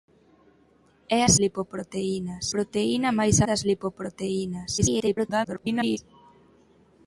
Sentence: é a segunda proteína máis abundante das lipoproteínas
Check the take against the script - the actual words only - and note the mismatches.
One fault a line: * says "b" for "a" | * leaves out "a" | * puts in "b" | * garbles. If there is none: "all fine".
* says "lipoproteínas" for "segunda"
* leaves out "abundante"
* garbles